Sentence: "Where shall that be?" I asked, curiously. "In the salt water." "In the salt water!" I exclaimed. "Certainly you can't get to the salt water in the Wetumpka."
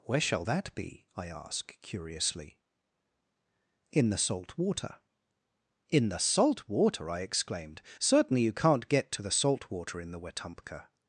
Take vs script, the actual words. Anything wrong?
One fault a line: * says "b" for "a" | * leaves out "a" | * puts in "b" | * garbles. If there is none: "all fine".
* says "ask" for "asked"